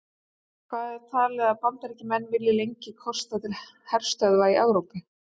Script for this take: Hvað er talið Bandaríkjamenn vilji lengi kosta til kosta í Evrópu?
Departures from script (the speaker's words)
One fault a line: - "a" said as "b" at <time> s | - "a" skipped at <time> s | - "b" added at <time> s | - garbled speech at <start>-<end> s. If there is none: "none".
- "að" added at 1.5 s
- "kosta" said as "herstöðva" at 3.9 s